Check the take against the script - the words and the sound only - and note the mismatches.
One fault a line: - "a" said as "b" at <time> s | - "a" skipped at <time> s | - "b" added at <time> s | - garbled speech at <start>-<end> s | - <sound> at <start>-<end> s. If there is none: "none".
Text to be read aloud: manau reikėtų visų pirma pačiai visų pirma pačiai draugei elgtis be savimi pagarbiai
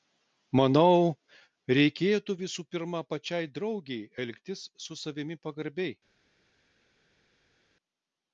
- "visų pirma pačiai" skipped at 3.5 s
- "be" said as "su" at 4.9 s